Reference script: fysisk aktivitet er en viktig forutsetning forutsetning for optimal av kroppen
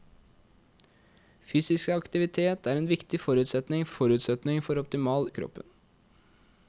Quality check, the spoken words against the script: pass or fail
pass